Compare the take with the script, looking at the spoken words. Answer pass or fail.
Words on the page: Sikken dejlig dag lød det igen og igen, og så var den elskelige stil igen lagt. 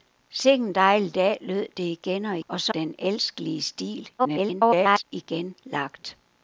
fail